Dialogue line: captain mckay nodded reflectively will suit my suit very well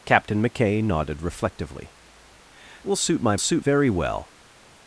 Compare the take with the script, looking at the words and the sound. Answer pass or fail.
pass